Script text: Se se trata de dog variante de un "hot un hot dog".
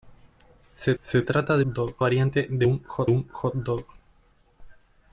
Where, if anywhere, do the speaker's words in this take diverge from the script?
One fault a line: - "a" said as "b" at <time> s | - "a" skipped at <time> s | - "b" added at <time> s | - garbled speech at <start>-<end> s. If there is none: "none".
none